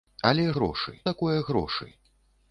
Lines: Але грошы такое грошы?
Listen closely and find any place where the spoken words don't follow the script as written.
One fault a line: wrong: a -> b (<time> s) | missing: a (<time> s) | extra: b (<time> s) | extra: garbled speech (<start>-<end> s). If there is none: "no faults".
no faults